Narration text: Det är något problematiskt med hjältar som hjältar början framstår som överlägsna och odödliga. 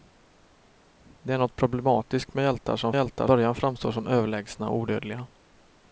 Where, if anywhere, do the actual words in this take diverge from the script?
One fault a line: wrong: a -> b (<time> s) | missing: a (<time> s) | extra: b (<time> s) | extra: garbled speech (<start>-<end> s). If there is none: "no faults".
no faults